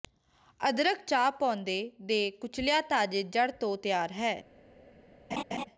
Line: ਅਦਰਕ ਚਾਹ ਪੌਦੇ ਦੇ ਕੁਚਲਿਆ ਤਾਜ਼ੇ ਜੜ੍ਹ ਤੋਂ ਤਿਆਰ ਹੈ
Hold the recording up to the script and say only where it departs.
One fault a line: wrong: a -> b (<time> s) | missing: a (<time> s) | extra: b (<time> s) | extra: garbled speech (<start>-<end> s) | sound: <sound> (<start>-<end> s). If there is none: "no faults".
sound: laugh (5.3-5.6 s)